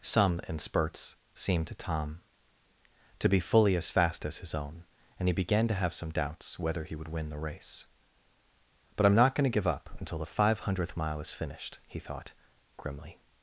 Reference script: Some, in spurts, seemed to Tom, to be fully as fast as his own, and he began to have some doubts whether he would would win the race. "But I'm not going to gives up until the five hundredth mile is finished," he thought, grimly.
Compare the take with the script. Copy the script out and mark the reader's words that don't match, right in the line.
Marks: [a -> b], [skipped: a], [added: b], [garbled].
Some, in spurts, seemed to Tom, to be fully as fast as his own, and he began to have some doubts whether he would [skipped: would] win the race. "But I'm not going to [gives -> give] up until the five hundredth mile is finished," he thought, grimly.